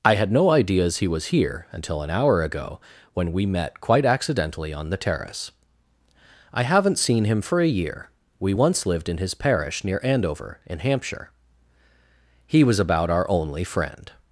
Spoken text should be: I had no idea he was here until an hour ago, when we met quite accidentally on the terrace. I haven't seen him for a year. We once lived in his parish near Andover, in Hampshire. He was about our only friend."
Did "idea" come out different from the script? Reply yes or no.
yes